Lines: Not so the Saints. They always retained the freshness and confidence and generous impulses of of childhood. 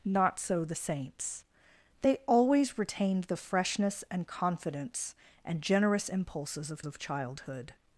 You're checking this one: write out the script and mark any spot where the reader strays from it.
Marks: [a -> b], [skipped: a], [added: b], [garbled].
Not so the Saints. They always retained the freshness and confidence and generous impulses of of childhood.